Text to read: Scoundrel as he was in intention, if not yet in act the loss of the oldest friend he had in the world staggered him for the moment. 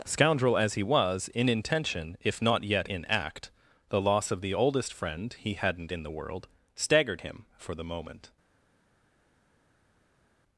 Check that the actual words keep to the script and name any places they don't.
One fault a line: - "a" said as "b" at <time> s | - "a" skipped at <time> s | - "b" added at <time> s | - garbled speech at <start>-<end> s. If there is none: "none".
- "had" said as "hadn't" at 5.5 s